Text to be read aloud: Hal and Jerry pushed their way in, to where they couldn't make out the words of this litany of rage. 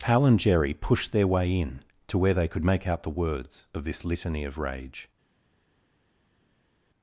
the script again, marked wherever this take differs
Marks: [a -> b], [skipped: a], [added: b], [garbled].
Hal and Jerry pushed their way in, to where they [couldn't -> could] make out the words of this litany of rage.